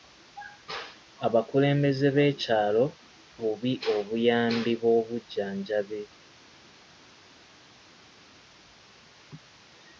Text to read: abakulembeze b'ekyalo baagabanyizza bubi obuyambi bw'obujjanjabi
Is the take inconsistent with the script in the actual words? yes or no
yes